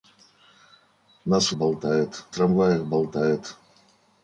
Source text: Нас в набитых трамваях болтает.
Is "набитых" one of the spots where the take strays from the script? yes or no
yes